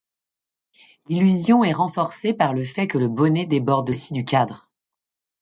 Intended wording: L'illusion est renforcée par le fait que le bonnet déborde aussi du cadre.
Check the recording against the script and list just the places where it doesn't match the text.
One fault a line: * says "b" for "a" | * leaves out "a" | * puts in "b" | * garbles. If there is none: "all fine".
all fine